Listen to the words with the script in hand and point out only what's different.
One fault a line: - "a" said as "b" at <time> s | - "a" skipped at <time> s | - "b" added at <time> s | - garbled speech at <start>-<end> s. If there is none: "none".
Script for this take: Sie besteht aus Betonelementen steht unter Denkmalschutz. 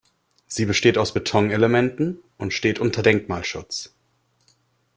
- "und" added at 2.4 s